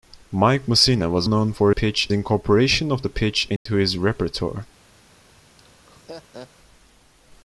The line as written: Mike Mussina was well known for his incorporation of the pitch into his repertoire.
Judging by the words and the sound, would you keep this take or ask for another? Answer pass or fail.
fail